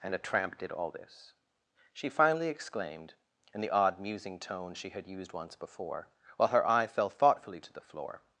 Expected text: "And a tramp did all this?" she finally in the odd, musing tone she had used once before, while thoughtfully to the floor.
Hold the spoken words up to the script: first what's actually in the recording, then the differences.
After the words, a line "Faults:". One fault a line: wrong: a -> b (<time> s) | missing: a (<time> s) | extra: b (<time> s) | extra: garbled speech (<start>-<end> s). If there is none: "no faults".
"And a tramp did all this?" she finally exclaimed, in the odd, musing tone she had used once before, while her eye fell thoughtfully to the floor.
Faults:
extra: exclaimed (2.5 s)
extra: her eye fell (6.5 s)